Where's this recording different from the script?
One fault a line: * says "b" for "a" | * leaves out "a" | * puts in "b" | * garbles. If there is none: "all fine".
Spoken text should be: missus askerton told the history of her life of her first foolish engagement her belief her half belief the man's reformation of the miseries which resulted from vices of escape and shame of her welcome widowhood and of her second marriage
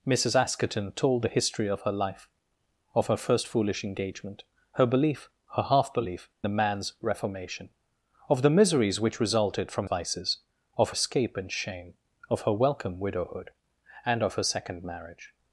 all fine